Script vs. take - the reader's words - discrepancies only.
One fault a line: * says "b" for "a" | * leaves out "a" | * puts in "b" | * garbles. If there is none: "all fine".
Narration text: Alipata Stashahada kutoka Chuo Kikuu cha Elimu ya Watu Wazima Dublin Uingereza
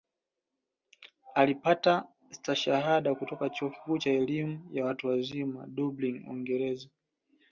all fine